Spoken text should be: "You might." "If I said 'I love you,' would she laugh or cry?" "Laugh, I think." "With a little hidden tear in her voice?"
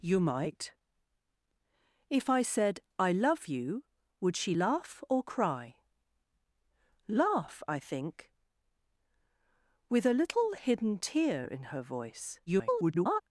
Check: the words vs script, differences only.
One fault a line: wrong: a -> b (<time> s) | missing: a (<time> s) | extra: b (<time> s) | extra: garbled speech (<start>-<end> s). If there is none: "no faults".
extra: garbled speech (12.5-13.2 s)